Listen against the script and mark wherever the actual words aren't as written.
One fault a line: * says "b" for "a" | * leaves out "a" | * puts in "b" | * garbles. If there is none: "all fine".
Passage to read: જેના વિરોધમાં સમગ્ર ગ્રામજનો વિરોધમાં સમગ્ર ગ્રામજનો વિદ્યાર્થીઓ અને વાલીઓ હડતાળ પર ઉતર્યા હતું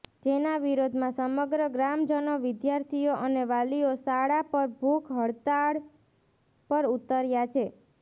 * says "વિદ્યાર્થીઓ અને વાલીઓ શાળા પર ભૂખ" for "વિરોધમાં સમગ્ર ગ્રામજનો વિદ્યાર્થીઓ અને વાલીઓ"
* says "છે" for "હતું"